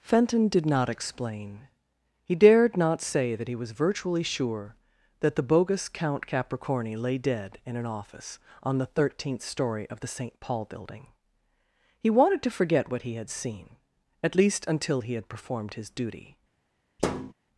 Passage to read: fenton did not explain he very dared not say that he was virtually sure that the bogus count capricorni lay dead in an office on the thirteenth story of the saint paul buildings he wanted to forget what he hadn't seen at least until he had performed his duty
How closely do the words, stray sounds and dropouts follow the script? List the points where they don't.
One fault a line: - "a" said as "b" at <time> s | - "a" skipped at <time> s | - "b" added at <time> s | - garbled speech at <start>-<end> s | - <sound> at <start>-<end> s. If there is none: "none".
- "very" skipped at 2.3 s
- "buildings" said as "building" at 10.7 s
- "hadn't" said as "had" at 13.1 s
- thud at 17.0-17.3 s